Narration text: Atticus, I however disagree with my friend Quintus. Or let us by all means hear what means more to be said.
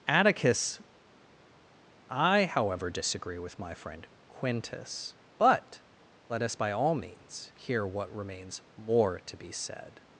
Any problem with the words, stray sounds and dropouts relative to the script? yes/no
yes